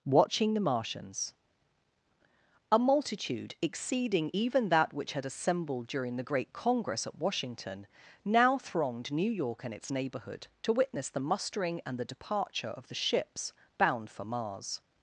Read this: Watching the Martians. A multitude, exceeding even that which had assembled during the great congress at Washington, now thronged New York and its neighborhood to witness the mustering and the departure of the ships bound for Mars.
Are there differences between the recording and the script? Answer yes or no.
no